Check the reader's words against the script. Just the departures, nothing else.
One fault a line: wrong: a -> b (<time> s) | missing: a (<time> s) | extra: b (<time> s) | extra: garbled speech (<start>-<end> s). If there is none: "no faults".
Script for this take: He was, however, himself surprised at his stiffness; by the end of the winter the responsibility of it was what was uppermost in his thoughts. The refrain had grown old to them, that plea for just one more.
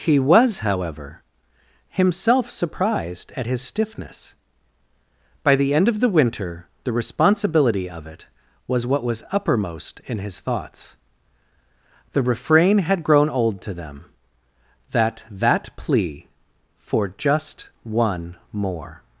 extra: that (15.3 s)